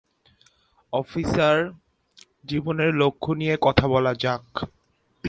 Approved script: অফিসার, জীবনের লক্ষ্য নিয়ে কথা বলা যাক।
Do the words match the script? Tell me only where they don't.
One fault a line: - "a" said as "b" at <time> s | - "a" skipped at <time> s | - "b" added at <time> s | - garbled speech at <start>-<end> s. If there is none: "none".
none